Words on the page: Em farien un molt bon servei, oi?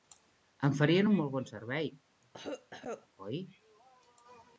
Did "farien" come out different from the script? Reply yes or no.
no